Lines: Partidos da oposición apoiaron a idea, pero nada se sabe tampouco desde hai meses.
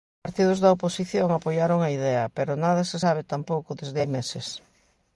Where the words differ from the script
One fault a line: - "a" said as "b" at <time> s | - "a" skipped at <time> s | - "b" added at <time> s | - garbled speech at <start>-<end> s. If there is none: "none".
none